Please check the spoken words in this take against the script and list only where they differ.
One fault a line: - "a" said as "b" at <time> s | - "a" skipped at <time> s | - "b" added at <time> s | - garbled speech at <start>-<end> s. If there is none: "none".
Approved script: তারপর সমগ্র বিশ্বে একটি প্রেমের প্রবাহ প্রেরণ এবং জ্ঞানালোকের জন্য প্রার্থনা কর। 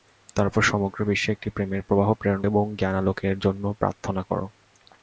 none